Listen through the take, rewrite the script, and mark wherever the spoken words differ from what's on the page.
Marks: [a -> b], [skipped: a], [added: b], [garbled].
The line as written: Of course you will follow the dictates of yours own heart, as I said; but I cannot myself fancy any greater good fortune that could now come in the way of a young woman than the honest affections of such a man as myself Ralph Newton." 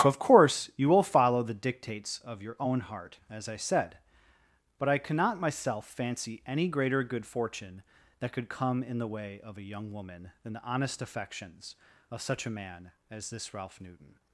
Of course you will follow the dictates of [yours -> your] own heart, as I said; but I cannot myself fancy any greater good fortune that could [skipped: now] come in the way of a young woman than the honest affections of such a man as [myself -> this] Ralph Newton."